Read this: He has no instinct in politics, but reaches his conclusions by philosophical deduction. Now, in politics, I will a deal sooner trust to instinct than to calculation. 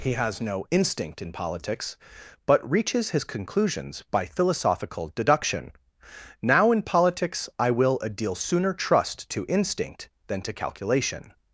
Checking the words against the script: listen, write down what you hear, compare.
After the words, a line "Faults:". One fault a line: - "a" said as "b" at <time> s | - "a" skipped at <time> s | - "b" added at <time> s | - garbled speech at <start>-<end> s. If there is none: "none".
He has no instinct in politics, but reaches his conclusions by philosophical deduction. Now, in politics, I will a deal sooner trust to instinct than to calculation.
Faults:
none